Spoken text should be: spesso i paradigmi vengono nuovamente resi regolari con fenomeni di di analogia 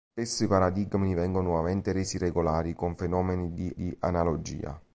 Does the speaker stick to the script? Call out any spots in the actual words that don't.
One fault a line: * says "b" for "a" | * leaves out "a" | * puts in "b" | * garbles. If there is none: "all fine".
all fine